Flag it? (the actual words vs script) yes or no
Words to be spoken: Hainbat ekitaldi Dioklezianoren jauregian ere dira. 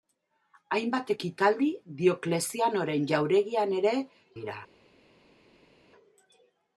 no